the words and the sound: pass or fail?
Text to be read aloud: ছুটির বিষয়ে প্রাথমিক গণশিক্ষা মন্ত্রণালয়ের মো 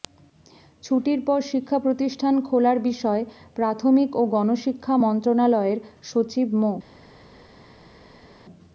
fail